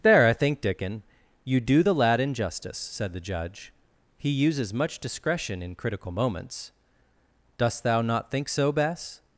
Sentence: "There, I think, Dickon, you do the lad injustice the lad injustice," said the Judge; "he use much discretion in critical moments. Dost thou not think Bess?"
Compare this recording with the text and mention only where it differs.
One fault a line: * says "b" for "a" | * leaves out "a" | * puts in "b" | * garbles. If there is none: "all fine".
* leaves out "the lad injustice"
* says "uses" for "use"
* puts in "so"